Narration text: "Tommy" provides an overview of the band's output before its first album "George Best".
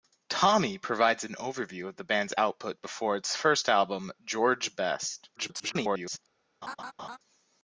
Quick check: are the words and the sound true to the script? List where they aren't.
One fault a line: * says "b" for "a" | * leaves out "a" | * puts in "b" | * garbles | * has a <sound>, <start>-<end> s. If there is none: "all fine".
* garbles
* has a laugh, 6.6-7.2 s